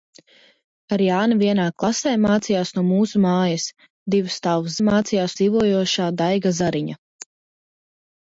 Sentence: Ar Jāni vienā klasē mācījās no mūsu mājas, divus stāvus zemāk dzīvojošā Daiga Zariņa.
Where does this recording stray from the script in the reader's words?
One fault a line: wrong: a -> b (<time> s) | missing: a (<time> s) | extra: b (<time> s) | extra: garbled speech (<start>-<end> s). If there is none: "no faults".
wrong: zemāk -> mācījās (4.9 s)